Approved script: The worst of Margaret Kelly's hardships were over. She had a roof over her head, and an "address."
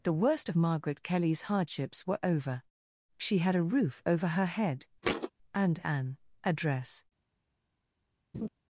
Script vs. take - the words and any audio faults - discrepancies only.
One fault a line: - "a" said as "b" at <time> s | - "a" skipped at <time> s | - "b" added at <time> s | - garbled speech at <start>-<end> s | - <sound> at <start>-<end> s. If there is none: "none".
- thud at 5.0-5.3 s
- laugh at 8.3-8.5 s